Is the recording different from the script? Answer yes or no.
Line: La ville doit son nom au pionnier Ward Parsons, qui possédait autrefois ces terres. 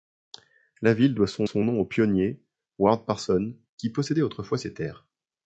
yes